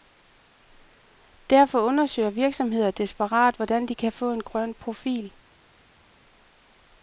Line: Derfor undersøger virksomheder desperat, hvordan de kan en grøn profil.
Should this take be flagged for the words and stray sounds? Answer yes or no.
yes